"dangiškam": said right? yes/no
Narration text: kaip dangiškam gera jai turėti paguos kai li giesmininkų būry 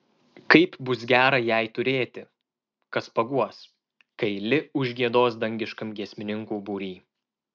no